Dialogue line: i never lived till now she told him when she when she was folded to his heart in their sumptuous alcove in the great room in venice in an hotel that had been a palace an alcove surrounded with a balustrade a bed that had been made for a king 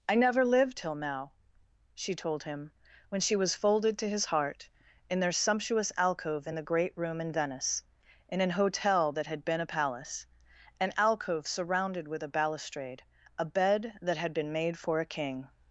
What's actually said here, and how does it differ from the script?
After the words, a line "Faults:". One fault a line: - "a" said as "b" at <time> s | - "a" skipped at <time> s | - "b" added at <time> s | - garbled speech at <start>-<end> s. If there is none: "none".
i never lived till now she told him when she was folded to his heart in their sumptuous alcove in the great room in venice in an hotel that had been a palace an alcove surrounded with a balustrade a bed that had been made for a king
Faults:
- "when she" skipped at 3.3 s